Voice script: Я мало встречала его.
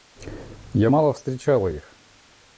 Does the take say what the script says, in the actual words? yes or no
no